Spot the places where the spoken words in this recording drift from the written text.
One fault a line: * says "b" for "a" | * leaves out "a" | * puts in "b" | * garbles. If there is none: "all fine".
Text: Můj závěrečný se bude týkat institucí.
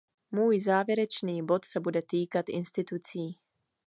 * puts in "bod"